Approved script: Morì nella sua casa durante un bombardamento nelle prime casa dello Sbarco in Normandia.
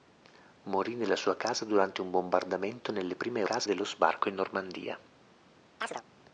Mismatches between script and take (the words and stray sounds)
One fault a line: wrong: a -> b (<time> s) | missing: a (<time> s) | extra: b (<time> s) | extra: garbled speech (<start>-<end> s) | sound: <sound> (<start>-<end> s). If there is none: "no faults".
sound: chirp (5.8-6.0 s)